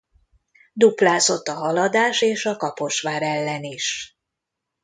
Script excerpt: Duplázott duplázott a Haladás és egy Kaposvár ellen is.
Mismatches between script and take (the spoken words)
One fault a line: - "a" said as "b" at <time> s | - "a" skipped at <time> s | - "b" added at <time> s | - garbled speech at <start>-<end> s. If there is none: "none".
- "duplázott" skipped at 1.5 s
- "egy" said as "a" at 2.5 s